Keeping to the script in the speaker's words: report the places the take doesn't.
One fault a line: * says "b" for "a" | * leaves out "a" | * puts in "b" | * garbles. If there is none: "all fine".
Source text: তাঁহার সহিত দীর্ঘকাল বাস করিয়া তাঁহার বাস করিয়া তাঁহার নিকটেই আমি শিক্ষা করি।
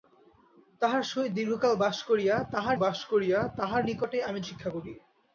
all fine